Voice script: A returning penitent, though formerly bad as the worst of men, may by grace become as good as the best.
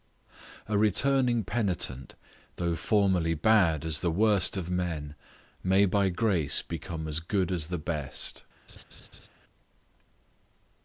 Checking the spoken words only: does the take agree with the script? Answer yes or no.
yes